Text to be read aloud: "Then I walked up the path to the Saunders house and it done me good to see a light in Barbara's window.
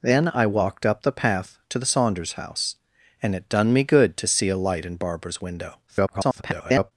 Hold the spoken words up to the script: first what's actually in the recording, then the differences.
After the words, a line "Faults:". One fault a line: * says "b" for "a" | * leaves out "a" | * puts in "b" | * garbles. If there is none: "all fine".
"Then I walked up the path to the Saunders house and it done me good to see a light in Barbara's window. [garbled]
Faults:
* garbles